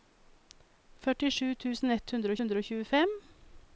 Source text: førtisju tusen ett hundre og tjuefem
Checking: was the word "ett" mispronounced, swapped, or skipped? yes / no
no